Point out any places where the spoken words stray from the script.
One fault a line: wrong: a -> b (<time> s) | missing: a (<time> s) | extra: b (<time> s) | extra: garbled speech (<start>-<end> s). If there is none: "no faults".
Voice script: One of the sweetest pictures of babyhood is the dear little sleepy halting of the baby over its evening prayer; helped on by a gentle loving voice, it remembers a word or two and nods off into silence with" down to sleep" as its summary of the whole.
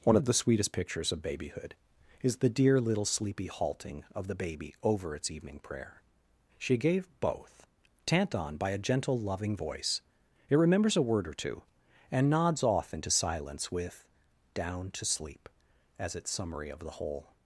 wrong: helped -> she gave both tant (6.6 s)